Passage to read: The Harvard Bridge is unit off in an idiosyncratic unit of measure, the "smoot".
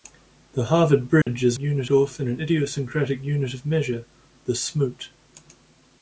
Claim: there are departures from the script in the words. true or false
false